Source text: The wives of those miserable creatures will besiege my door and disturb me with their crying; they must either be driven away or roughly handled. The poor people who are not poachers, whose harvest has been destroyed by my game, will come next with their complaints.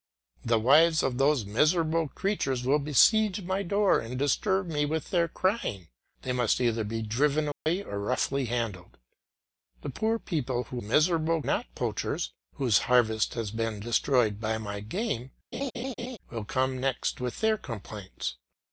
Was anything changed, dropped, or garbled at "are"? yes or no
yes